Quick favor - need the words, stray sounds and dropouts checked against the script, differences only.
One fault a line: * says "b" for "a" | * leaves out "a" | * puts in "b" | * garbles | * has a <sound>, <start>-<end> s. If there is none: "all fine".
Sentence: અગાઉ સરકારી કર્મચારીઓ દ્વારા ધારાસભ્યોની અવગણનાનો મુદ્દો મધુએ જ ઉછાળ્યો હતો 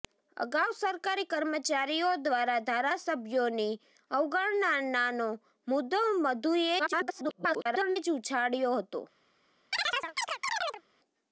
* garbles
* has a chirp, 9.7-10.8 s